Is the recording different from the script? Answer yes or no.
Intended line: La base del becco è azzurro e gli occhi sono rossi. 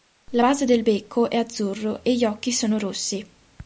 no